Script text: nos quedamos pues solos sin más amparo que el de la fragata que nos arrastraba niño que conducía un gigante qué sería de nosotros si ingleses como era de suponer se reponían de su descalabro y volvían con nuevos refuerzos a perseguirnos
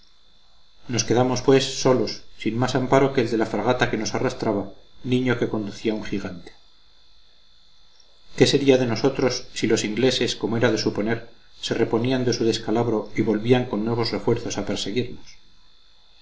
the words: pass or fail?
fail